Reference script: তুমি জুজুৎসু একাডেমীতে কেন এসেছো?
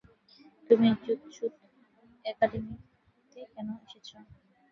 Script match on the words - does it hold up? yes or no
yes